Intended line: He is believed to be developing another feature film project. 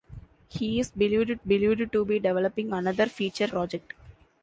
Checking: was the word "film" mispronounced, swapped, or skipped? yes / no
yes